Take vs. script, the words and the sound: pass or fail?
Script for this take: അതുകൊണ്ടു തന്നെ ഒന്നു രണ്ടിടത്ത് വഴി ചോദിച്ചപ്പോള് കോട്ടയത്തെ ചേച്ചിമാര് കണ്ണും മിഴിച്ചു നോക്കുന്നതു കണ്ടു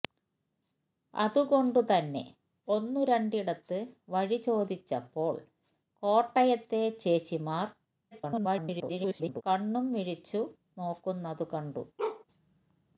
fail